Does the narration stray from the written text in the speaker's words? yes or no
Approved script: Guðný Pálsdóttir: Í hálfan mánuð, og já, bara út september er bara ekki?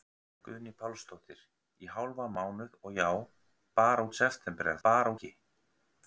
no